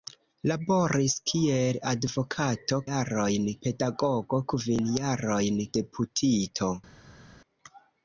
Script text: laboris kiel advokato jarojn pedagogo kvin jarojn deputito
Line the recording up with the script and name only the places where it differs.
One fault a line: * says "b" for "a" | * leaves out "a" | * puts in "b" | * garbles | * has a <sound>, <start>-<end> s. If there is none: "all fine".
all fine